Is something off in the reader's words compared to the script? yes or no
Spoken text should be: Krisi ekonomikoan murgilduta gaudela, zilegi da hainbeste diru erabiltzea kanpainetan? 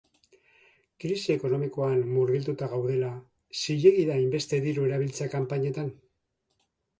no